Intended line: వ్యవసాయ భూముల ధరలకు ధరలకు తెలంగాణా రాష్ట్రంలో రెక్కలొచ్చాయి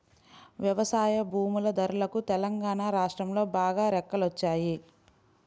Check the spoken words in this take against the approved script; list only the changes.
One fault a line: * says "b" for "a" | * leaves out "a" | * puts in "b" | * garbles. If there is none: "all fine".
* leaves out "ధరలకు"
* puts in "బాగా"